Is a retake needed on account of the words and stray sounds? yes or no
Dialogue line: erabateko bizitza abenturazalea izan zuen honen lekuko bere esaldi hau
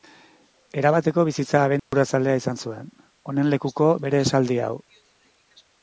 yes